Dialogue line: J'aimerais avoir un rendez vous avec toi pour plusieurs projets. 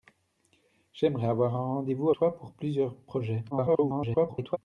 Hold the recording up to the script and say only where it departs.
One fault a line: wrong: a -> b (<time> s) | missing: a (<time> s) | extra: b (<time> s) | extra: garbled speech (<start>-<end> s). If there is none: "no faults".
missing: avec (2.1 s)
extra: garbled speech (3.5-4.6 s)